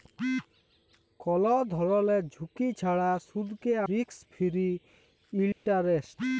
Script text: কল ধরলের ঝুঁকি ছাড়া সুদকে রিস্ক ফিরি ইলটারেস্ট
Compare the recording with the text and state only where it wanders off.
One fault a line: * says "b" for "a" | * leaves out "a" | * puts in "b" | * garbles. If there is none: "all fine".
all fine